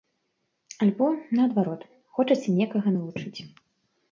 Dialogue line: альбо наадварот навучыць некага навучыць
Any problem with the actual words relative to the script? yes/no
yes